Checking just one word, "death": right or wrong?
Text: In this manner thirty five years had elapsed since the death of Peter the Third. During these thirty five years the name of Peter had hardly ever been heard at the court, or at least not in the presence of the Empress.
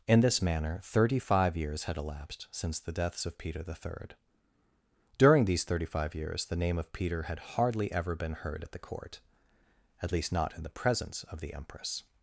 wrong